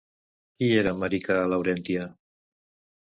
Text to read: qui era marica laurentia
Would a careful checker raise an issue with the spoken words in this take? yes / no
no